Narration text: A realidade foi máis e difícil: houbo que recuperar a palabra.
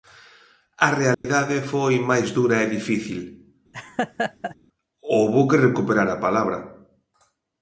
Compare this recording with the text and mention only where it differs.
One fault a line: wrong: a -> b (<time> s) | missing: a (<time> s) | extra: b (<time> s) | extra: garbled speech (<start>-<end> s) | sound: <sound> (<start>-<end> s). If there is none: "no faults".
sound: dropout (1.1-1.2 s)
extra: dura (2.4 s)
sound: laugh (3.7-4.6 s)